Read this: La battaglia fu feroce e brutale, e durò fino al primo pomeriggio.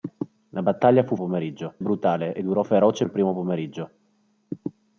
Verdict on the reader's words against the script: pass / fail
fail